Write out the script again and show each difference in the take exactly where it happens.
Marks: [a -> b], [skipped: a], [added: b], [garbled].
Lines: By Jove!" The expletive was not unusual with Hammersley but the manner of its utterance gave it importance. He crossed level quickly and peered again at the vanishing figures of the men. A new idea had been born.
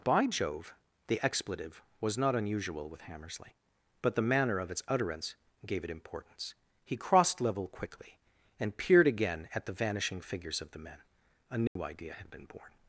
By Jove!" The expletive was not unusual with Hammersley but the manner of its utterance gave it importance. He crossed level quickly and peered again at the vanishing figures of the men. A new idea had been born.